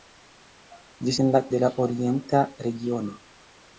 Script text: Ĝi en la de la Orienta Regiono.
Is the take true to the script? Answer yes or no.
yes